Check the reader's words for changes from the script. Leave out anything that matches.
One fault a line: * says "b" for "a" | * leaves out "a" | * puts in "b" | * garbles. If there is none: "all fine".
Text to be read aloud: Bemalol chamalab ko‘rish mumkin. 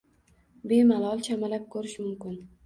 all fine